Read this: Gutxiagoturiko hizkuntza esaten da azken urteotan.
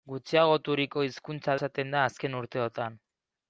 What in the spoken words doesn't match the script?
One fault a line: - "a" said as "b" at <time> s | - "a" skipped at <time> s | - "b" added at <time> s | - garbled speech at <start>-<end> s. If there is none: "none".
none